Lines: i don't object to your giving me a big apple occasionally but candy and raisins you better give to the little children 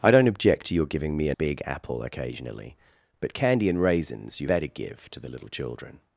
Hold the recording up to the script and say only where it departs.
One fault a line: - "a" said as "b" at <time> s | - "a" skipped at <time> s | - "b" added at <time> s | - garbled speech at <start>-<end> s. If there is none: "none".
none